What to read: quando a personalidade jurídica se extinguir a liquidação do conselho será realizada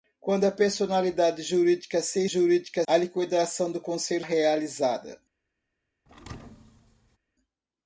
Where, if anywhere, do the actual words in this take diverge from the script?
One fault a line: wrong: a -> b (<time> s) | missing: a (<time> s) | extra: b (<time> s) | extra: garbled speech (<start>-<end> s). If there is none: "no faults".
wrong: extinguir -> jurídica (2.3 s)
missing: será (4.2 s)